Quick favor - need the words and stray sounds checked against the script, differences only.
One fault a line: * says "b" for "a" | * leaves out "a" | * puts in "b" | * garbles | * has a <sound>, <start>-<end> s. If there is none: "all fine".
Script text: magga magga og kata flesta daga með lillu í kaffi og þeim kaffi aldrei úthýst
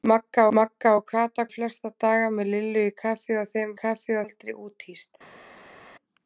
all fine